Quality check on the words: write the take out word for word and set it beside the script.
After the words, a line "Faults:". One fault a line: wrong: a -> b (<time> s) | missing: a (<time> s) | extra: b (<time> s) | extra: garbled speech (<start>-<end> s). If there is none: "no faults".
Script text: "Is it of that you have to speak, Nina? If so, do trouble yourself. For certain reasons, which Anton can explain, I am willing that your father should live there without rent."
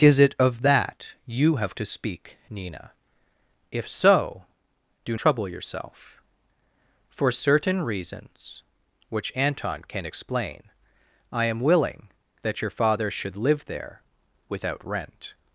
"Is it of that you have to speak, Nina? If so, do trouble yourself. For certain reasons, which Anton can explain, I am willing that your father should live there without rent."
Faults:
no faults